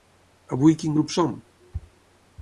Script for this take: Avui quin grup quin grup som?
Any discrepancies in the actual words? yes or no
yes